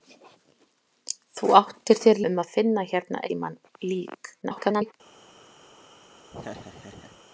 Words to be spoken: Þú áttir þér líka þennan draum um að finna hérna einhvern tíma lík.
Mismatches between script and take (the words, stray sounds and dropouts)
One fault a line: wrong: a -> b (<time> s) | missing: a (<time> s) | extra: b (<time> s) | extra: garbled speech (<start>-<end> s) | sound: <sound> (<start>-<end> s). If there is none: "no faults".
missing: líka þennan draum (2.2 s)
missing: einhvern (3.2 s)
extra: garbled speech (4.4-4.9 s)
sound: laugh (6.3-7.2 s)